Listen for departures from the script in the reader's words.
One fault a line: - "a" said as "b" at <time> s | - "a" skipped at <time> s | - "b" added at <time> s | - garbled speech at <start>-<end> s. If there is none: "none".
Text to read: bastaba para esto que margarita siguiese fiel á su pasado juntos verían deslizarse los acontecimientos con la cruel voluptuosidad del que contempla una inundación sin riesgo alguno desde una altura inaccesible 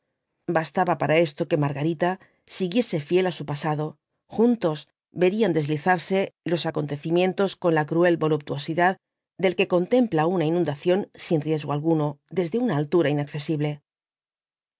none